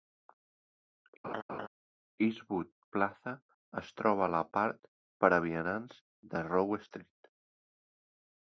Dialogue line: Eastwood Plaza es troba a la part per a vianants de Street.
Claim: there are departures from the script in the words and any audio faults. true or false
true